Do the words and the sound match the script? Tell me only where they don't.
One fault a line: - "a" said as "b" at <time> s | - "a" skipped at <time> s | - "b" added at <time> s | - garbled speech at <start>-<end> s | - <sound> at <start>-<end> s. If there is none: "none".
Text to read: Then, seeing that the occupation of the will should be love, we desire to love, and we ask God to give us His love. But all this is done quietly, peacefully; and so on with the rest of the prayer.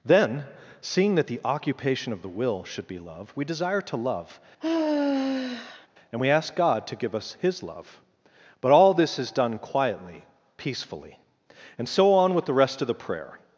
- sigh at 4.6-5.9 s